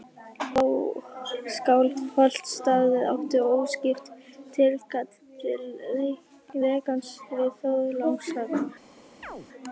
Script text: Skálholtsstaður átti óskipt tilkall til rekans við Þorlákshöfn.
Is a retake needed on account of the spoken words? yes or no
no